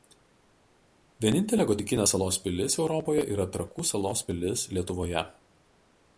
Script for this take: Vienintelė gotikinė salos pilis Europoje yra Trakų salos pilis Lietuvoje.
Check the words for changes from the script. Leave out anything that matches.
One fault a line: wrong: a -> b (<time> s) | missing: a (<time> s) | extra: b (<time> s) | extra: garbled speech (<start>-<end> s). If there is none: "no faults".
no faults